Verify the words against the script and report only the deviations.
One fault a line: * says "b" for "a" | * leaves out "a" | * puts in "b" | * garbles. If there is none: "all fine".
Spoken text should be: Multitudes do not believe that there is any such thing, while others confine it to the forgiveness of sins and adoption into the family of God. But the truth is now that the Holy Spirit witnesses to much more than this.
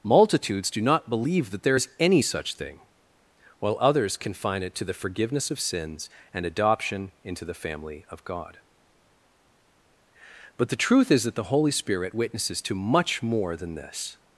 * leaves out "now"